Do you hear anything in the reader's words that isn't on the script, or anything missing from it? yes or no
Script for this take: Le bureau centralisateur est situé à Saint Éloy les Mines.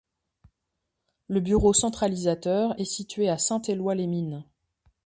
no